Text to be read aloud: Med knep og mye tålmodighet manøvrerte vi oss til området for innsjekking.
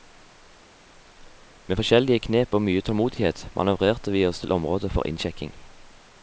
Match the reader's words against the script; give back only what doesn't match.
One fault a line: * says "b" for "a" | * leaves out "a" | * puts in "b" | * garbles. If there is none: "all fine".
* puts in "forskjellige"